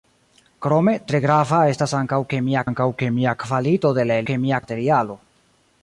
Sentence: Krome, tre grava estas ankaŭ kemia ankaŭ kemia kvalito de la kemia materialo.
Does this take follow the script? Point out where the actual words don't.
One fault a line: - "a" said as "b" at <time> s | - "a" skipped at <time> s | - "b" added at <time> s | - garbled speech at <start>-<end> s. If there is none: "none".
none